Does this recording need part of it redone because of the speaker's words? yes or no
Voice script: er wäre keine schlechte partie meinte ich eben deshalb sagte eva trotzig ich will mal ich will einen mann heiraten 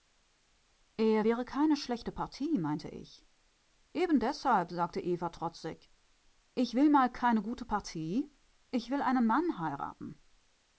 yes